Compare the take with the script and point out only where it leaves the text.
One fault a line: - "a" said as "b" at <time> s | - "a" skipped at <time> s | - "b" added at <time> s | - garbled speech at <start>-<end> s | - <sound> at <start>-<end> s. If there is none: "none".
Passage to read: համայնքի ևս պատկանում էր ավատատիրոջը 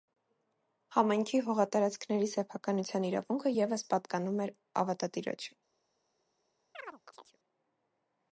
- "հողատարածքների սեփականության իրավունքը" added at 1.5 s
- chirp at 6.7-7.4 s